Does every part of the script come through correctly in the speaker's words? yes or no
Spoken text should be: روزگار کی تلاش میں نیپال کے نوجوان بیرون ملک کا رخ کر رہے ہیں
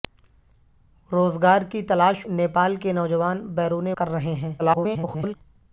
no